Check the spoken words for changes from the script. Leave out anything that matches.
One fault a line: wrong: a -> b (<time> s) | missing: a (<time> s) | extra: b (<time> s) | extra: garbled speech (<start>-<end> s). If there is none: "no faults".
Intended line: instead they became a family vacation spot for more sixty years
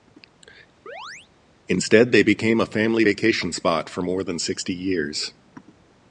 extra: than (4.2 s)